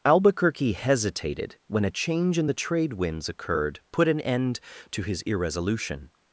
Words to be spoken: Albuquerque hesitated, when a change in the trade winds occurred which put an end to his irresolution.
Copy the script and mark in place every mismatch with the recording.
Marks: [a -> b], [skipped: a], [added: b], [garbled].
Albuquerque hesitated, when a change in the trade winds occurred [skipped: which] put an end to his irresolution.